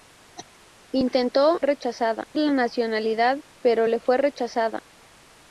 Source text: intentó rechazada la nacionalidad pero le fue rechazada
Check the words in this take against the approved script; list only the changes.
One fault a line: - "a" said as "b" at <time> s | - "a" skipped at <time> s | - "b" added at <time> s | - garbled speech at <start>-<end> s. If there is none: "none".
none